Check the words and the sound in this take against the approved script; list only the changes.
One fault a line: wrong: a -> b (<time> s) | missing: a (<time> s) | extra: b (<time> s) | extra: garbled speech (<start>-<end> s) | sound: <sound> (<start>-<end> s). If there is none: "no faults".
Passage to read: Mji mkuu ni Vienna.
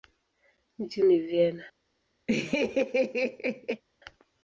missing: mkuu (1.0 s)
sound: laugh (2.3-3.8 s)